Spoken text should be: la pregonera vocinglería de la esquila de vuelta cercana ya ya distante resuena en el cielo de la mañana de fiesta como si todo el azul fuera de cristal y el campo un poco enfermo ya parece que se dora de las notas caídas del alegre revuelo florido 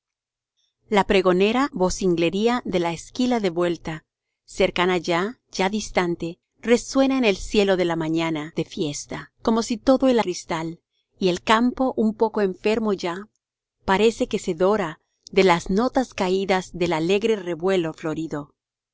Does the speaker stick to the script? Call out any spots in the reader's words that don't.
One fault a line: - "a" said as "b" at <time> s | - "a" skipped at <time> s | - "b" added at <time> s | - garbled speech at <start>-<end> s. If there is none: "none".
- "azul fuera de" skipped at 10.2 s